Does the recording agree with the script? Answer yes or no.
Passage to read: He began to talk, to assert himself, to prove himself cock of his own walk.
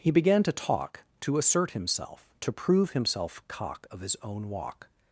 yes